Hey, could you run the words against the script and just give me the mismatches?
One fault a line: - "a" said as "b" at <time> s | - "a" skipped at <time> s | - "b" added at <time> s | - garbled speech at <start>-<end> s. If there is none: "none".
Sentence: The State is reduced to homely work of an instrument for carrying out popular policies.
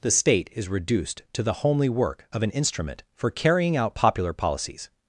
- "the" added at 1.4 s